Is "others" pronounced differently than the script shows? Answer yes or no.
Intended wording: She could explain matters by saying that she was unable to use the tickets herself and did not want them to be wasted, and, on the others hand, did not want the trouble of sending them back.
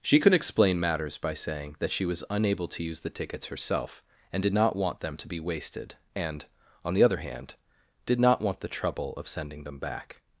yes